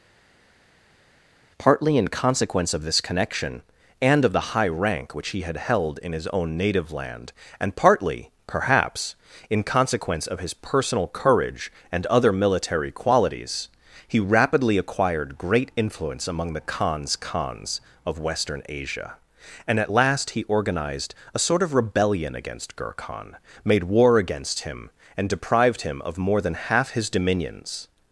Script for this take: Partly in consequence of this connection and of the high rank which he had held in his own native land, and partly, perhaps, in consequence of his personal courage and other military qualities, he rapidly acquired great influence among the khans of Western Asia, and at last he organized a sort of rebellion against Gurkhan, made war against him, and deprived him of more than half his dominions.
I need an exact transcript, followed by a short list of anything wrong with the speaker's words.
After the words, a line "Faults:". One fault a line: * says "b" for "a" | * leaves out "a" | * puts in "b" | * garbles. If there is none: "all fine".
Partly in consequence of this connection and of the high rank which he had held in his own native land, and partly, perhaps, in consequence of his personal courage and other military qualities, he rapidly acquired great influence among the khans khans of Western Asia, and at last he organized a sort of rebellion against Gurkhan, made war against him, and deprived him of more than half his dominions.
Faults:
* puts in "khans"